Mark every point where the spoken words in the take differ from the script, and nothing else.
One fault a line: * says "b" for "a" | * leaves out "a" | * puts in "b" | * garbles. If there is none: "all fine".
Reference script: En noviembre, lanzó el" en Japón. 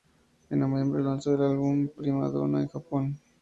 * puts in "álbum Prima Donna"